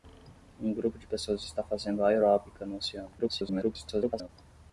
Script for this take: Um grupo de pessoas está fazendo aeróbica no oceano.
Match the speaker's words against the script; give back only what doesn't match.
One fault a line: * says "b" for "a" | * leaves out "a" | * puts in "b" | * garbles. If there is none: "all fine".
* garbles